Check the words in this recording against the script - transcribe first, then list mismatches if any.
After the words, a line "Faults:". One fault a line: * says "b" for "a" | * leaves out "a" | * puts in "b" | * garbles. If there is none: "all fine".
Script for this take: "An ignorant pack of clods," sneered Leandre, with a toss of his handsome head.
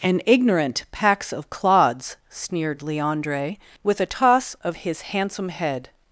"An ignorant packs of clods," sneered Leandre, with a toss of his handsome head.
Faults:
* says "packs" for "pack"